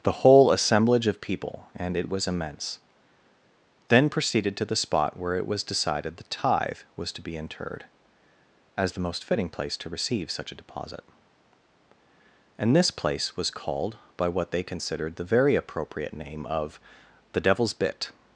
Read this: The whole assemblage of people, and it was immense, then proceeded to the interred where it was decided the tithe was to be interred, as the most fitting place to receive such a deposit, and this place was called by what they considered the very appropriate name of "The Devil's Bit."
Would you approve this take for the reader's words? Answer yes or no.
no